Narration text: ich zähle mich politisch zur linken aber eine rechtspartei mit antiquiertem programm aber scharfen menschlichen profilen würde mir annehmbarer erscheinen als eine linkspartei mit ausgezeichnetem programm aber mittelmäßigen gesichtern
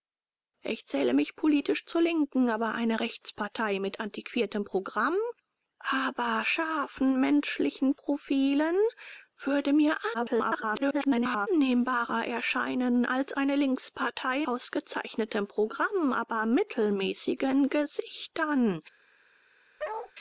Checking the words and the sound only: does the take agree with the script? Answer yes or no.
no